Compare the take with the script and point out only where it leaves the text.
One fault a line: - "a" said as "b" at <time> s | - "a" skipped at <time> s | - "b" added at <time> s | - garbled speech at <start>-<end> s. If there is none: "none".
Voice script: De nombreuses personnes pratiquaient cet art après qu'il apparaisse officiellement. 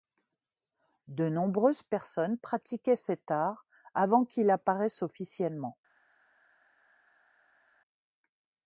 - "après" said as "avant" at 3.9 s